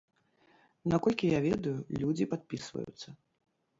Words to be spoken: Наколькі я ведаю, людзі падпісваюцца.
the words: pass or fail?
pass